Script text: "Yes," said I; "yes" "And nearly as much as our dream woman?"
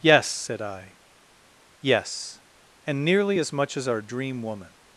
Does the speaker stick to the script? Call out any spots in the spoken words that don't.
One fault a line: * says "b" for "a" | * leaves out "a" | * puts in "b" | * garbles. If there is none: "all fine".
all fine